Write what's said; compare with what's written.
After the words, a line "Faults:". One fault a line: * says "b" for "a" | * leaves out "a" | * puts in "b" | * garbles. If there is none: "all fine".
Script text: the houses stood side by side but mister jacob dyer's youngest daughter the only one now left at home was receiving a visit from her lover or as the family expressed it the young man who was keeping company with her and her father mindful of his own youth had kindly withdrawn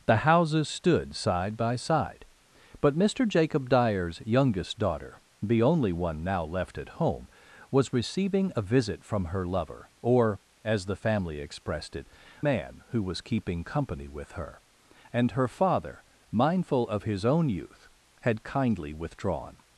the houses stood side by side but mister jacob dyer's youngest daughter the only one now left at home was receiving a visit from her lover or as the family expressed it man who was keeping company with her and her father mindful of his own youth had kindly withdrawn
Faults:
* leaves out "the young"